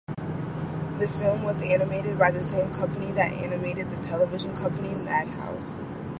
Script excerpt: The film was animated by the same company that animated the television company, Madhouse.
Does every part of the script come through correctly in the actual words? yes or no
yes